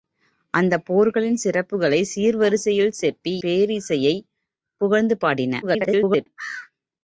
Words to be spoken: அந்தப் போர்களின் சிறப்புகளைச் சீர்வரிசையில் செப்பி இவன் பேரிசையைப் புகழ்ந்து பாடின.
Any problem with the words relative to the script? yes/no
yes